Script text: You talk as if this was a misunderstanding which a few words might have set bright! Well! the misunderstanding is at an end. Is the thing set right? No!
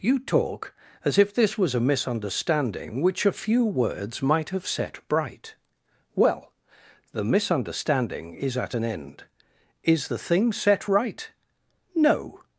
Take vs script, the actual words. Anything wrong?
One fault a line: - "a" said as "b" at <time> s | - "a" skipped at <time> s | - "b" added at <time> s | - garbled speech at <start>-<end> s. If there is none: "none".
none